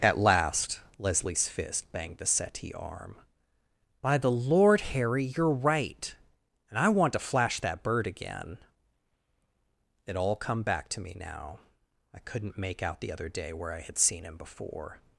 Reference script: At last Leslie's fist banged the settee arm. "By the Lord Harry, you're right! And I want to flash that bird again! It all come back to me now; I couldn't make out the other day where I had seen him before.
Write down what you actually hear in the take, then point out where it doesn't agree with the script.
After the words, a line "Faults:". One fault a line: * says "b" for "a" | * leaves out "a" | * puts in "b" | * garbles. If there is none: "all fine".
At last Leslie's fist banged the settee arm. "By the Lord Harry, you're right! And I want to flash that bird again! It all come back to me now; I couldn't make out the other day where I had seen him before.
Faults:
all fine